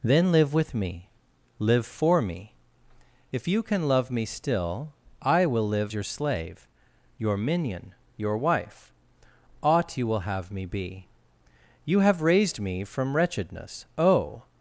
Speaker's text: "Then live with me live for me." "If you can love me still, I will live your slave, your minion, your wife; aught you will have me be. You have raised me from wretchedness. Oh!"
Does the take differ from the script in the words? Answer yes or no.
no